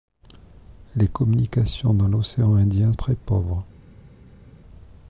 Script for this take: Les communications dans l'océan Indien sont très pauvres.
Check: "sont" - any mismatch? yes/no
yes